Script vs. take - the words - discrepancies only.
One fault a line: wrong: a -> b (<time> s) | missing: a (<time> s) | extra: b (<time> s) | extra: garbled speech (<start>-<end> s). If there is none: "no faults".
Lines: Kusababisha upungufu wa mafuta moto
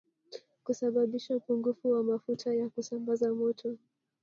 extra: ya kusambaza (2.5 s)